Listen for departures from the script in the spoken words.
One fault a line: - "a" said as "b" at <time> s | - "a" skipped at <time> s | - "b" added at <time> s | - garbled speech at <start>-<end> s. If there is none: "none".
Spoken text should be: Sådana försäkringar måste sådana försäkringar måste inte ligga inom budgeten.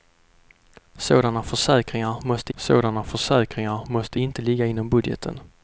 none